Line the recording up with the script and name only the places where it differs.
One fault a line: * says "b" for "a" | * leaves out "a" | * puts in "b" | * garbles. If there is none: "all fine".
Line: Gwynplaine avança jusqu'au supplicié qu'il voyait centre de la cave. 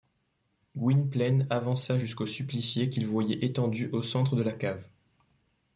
* puts in "étendu au"